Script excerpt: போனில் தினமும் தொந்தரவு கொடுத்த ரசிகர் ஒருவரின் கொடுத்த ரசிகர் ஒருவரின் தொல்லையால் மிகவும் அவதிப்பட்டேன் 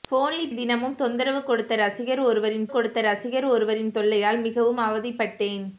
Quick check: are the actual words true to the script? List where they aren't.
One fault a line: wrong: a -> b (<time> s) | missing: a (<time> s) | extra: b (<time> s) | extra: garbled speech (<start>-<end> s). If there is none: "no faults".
no faults